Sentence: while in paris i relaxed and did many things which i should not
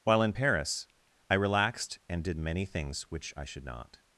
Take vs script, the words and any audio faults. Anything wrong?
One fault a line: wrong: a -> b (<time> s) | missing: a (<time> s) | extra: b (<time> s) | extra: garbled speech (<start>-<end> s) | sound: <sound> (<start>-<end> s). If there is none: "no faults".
no faults